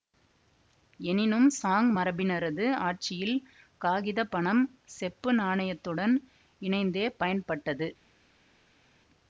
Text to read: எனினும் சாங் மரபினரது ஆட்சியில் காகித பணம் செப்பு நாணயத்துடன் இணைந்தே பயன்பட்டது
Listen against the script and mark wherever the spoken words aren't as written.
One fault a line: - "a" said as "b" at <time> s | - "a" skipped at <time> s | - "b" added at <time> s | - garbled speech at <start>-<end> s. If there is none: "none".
none